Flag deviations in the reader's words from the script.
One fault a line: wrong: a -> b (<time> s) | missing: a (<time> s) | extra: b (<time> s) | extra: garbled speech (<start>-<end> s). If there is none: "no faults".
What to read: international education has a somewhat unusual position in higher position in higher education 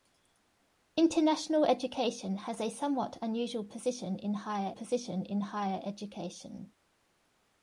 no faults